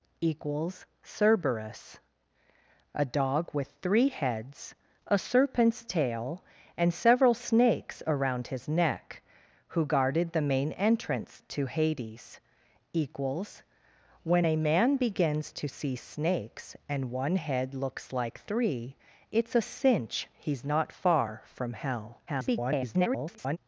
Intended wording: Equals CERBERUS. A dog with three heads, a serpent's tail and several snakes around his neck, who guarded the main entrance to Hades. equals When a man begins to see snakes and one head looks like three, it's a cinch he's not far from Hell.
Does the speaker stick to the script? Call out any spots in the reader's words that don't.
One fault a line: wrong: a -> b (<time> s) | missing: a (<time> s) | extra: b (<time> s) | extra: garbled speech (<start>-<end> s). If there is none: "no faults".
extra: garbled speech (22.3-23.6 s)